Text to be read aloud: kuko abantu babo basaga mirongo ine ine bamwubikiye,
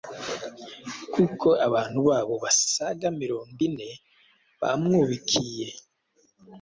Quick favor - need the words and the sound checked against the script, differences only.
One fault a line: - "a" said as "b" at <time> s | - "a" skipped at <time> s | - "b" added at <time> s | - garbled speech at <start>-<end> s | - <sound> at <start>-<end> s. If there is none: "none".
- "ine" skipped at 3.9 s